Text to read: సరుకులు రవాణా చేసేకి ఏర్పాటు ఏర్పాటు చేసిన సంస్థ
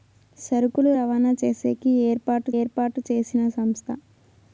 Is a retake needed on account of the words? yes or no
no